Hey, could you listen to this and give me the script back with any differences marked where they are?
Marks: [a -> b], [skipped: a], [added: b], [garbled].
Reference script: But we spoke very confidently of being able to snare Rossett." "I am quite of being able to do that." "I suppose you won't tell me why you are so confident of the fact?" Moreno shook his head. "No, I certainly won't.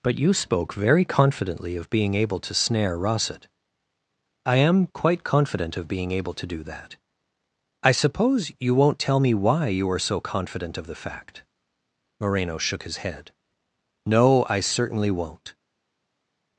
But [we -> you] spoke very confidently of being able to snare Rossett." "I am quite [added: confident] of being able to do that." "I suppose you won't tell me why you are so confident of the fact?" Moreno shook his head. "No, I certainly won't.